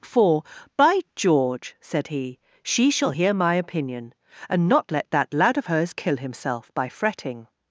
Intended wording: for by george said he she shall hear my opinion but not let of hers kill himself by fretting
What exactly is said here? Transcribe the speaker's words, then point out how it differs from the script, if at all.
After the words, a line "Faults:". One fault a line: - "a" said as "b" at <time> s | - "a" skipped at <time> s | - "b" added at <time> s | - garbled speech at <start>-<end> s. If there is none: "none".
for by george said he she shall hear my opinion and not let that lad of hers kill himself by fretting
Faults:
- "but" said as "and" at 4.5 s
- "that lad" added at 5.1 s